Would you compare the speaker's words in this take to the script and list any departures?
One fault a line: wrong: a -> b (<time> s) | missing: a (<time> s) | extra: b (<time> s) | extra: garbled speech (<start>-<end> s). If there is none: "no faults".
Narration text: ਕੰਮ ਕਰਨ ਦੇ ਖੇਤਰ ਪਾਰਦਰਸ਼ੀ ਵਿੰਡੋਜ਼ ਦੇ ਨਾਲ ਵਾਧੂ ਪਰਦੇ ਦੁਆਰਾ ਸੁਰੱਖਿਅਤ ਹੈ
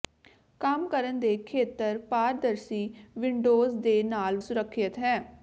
missing: ਵਾਧੂ ਪਰਦੇ ਦੁਆਰਾ (4.4 s)